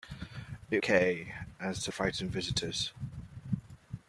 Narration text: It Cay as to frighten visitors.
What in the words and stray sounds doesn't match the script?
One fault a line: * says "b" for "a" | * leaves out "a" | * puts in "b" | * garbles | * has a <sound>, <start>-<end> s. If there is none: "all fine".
all fine